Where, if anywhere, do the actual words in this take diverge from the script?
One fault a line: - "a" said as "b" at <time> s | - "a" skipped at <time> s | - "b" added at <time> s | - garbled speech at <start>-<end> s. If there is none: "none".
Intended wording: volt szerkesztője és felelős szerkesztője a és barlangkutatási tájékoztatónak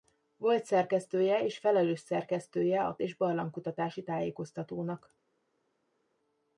none